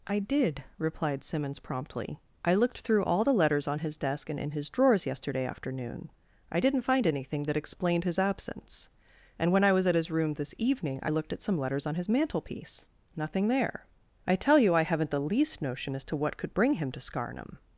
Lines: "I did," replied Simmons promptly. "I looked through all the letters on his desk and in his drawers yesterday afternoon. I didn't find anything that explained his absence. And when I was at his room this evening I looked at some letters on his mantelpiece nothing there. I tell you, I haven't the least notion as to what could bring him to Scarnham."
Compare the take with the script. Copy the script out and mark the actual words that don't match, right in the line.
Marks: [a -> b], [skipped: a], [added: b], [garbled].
"I did," replied Simmons promptly. "I looked through all the letters on his desk and in his drawers yesterday afternoon. I didn't find anything that explained his absence. And when I was at his room this evening I looked at some letters on his mantelpiece nothing there. I tell you, I haven't the least notion as to what could bring him to Scarnham."